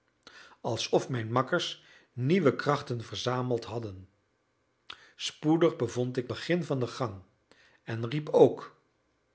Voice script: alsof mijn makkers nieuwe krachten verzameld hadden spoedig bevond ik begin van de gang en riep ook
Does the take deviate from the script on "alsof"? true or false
false